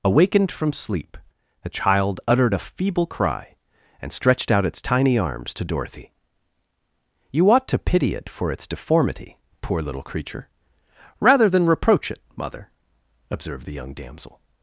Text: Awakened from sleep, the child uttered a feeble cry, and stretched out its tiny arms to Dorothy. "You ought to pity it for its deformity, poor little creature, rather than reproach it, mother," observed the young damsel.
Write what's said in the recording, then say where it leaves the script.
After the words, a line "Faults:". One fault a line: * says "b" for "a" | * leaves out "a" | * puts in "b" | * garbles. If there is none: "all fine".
Awakened from sleep, the child uttered a feeble cry, and stretched out its tiny arms to Dorothy. "You ought to pity it for its deformity, poor little creature, rather than reproach it, mother," observed the young damsel.
Faults:
all fine